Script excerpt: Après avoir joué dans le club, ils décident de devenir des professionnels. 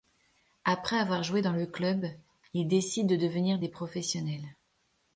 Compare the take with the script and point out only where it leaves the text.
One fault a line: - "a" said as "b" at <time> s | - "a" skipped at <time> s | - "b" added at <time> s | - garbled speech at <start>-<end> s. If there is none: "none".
none